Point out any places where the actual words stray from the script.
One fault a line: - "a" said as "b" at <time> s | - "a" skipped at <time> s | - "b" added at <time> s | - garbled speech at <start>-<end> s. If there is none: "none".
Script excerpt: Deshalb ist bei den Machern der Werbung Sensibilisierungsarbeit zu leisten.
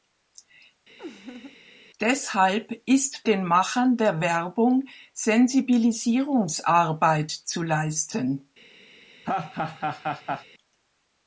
- "bei" skipped at 3.2 s